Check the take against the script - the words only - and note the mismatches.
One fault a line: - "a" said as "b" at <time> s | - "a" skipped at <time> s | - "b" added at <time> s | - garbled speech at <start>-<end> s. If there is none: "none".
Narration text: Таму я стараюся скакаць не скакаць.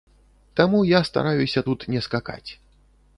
- "скакаць" said as "тут" at 1.7 s